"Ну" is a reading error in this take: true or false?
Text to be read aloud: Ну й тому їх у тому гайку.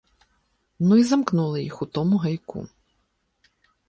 false